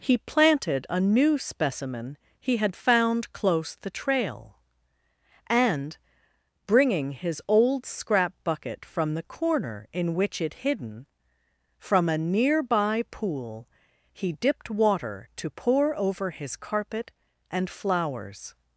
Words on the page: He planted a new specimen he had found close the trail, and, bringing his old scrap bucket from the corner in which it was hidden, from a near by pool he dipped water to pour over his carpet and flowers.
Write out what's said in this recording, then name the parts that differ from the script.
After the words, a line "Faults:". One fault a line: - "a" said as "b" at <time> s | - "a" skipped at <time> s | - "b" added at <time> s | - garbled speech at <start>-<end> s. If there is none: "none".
He planted a new specimen he had found close the trail, and, bringing his old scrap bucket from the corner in which it hidden, from a near by pool he dipped water to pour over his carpet and flowers.
Faults:
- "was" skipped at 10.5 s